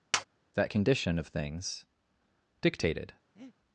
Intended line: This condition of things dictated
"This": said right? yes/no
no